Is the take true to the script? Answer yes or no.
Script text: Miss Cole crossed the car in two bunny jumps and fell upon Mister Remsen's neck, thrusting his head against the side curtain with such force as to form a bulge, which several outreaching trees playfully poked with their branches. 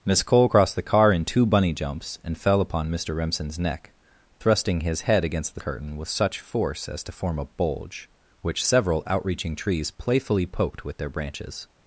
no